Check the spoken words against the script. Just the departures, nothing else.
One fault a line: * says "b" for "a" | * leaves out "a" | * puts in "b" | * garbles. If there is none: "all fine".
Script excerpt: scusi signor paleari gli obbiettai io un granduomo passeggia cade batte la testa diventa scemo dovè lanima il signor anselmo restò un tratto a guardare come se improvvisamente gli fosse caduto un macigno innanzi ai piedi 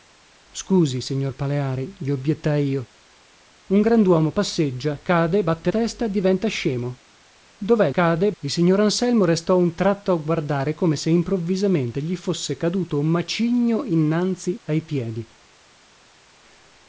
* leaves out "la"
* says "cade" for "lanima"